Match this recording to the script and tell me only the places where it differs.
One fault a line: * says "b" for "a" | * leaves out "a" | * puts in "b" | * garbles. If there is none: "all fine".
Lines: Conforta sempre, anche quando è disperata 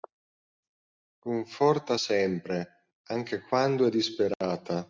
all fine